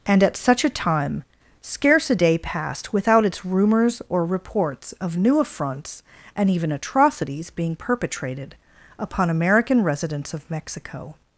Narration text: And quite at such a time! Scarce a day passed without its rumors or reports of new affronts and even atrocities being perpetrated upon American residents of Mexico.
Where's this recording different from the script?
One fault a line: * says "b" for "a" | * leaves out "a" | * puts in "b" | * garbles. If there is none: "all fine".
* leaves out "quite"